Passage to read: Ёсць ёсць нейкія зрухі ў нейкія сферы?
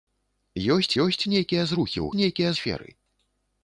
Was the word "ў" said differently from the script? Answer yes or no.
no